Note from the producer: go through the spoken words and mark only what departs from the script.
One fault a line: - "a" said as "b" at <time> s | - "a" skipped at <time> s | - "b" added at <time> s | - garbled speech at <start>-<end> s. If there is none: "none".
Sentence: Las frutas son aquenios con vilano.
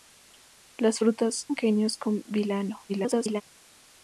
- "son" skipped at 1.5 s
- garbled speech at 2.9-3.4 s